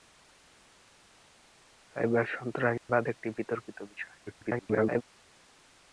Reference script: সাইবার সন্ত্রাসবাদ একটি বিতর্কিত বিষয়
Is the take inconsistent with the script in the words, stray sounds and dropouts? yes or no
yes